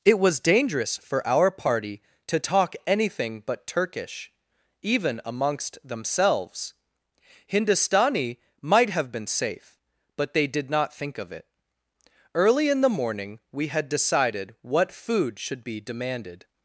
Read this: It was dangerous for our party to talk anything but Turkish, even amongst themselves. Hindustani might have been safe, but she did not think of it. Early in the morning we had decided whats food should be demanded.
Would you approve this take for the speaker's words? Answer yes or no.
no